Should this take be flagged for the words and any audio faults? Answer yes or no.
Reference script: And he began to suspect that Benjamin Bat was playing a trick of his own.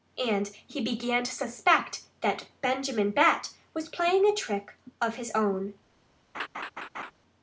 yes